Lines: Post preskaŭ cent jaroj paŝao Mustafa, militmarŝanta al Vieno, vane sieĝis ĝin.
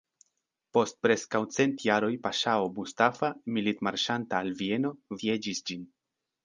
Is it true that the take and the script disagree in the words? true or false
true